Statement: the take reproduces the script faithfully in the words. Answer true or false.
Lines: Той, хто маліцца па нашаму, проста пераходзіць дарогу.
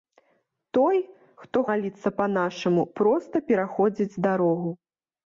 true